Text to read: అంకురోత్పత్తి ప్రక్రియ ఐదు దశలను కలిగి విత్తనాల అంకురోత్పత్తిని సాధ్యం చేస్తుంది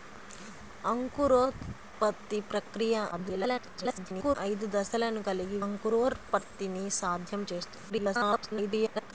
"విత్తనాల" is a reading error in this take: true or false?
true